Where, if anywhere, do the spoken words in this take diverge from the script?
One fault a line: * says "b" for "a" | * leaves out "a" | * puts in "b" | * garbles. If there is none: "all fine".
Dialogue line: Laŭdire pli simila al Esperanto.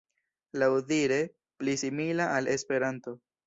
all fine